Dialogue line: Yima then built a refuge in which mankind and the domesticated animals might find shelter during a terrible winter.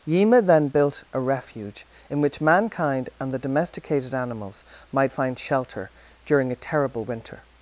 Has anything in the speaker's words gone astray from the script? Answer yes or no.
no